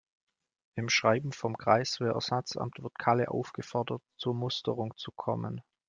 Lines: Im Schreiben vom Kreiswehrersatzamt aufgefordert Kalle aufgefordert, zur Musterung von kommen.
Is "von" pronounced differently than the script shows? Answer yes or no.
yes